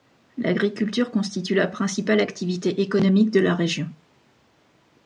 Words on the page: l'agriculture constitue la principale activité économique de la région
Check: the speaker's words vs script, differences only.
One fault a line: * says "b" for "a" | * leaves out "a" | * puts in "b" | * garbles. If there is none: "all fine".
all fine